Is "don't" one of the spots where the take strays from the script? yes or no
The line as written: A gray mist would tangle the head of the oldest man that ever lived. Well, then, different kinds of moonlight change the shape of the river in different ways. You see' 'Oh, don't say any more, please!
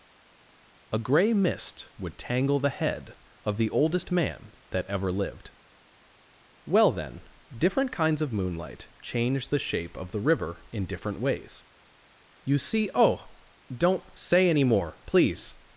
no